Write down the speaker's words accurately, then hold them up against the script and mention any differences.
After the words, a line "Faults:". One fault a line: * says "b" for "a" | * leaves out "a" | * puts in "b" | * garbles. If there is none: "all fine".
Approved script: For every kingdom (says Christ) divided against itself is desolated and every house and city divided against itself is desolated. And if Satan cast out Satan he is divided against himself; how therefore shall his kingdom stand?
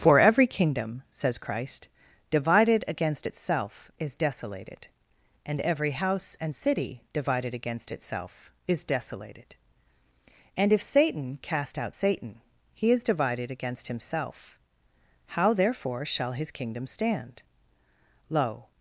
For every kingdom (says Christ) divided against itself is desolated and every house and city divided against itself is desolated. And if Satan cast out Satan he is divided against himself; how therefore shall his kingdom stand? Lo
Faults:
* puts in "Lo"